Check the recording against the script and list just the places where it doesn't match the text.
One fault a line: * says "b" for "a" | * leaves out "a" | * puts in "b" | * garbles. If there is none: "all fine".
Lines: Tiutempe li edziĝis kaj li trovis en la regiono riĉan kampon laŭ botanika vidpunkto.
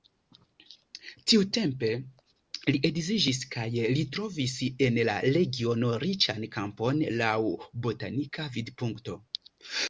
all fine